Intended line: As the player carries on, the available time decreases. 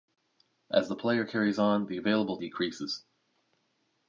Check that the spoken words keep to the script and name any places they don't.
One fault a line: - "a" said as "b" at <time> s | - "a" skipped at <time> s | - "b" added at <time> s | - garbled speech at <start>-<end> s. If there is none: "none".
- "time" skipped at 2.4 s